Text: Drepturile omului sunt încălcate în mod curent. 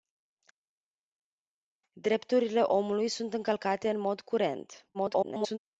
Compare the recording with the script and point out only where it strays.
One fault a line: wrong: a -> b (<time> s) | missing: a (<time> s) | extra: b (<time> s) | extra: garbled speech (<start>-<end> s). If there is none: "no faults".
extra: garbled speech (4.9-5.6 s)